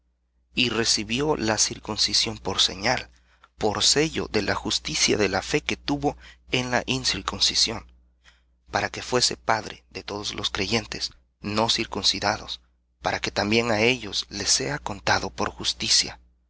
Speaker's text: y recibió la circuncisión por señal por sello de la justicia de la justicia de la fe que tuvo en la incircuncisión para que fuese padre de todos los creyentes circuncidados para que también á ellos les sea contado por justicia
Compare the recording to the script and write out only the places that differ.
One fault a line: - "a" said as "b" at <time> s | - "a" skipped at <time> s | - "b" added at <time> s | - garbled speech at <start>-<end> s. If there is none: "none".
- "justicia de la" skipped at 5.4 s
- "no" added at 11.4 s